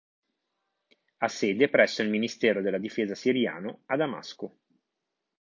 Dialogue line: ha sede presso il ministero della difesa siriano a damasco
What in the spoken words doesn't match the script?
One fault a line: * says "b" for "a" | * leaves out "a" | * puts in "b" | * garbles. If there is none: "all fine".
all fine